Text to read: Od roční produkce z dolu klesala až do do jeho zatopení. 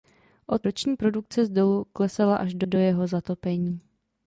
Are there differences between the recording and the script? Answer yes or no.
no